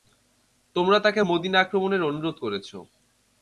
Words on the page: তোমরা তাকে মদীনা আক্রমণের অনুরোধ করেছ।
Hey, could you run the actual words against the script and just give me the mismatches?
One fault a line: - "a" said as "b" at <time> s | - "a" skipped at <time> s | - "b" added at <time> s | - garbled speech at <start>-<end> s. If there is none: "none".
none